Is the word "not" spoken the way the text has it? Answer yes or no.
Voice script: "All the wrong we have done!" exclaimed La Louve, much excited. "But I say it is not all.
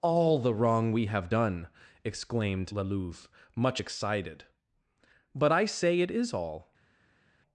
no